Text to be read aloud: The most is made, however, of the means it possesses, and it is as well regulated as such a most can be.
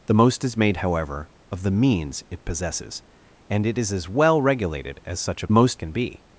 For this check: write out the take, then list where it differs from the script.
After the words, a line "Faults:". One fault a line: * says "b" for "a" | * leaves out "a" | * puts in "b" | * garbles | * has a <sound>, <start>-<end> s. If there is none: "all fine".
The most is made, however, of the means it possesses, and it is as well regulated as such a most can be.
Faults:
all fine